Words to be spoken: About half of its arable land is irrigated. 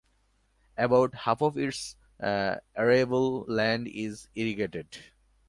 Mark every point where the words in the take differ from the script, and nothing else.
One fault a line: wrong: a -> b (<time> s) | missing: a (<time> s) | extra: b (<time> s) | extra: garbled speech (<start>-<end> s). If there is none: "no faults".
no faults